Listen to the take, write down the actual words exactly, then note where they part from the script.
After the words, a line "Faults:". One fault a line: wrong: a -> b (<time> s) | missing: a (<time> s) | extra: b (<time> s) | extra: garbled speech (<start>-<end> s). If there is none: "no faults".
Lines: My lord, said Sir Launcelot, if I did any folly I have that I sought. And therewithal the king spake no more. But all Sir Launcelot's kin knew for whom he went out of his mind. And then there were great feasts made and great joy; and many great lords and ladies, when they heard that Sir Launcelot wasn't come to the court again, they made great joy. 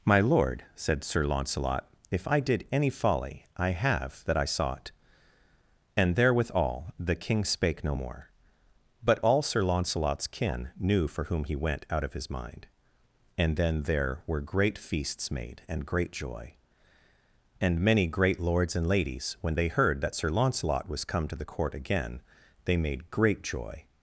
My lord, said Sir Launcelot, if I did any folly I have that I sought. And therewithal the king spake no more. But all Sir Launcelot's kin knew for whom he went out of his mind. And then there were great feasts made and great joy; and many great lords and ladies, when they heard that Sir Launcelot was come to the court again, they made great joy.
Faults:
wrong: wasn't -> was (20.9 s)